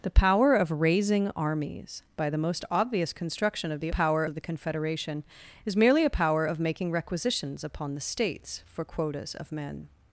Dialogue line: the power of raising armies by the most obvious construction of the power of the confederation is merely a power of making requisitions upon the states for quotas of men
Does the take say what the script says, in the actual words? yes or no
yes